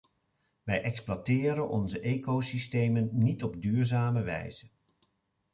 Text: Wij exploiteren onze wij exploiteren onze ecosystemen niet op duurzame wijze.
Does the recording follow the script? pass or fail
fail